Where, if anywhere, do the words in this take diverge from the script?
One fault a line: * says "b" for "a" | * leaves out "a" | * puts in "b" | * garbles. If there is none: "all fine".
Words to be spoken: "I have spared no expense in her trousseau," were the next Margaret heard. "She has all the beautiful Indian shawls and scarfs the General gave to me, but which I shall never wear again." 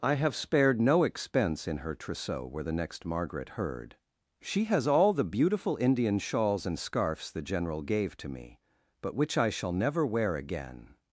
all fine